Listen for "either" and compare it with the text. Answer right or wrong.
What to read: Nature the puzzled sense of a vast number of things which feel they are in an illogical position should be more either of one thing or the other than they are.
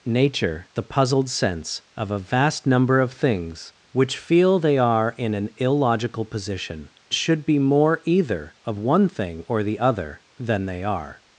right